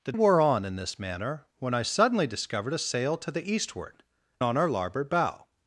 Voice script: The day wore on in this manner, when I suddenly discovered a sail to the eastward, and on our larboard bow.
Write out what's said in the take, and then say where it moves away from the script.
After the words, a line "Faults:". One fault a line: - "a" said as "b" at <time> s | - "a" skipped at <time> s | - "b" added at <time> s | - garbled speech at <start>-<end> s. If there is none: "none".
The wore on in this manner, when I suddenly discovered a sail to the eastward, on our larboard bow.
Faults:
- "day" skipped at 0.1 s
- "and" skipped at 4.0 s